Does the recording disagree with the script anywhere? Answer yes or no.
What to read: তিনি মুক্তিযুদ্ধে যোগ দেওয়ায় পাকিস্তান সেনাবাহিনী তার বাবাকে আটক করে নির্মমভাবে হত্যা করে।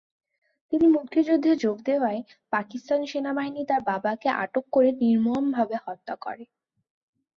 no